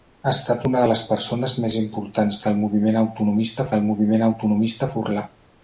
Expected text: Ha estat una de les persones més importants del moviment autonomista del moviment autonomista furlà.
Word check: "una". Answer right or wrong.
right